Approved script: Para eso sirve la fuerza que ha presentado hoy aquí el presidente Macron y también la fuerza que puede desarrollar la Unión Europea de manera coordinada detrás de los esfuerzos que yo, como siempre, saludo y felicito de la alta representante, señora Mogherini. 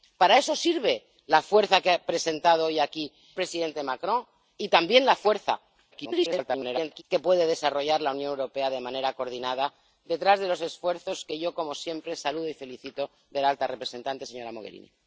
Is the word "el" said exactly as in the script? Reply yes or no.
no